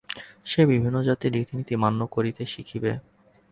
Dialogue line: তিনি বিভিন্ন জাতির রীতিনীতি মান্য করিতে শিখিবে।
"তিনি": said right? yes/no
no